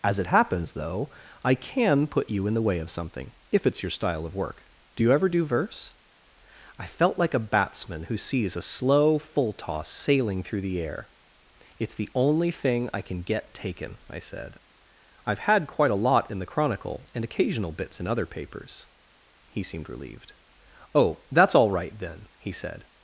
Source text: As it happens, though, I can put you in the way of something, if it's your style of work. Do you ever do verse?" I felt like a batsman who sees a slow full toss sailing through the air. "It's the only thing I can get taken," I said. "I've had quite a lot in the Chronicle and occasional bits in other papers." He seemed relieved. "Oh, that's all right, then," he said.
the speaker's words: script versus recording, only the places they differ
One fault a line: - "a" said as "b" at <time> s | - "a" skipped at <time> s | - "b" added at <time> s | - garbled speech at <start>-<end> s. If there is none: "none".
none